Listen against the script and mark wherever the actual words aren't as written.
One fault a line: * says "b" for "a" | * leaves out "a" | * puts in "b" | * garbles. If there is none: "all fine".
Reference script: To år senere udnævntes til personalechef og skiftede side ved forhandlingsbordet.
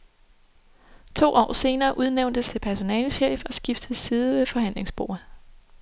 all fine